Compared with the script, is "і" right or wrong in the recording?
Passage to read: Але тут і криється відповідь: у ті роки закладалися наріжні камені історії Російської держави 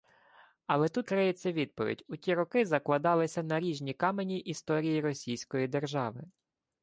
wrong